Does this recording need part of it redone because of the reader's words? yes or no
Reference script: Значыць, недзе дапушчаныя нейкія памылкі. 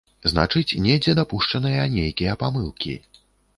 no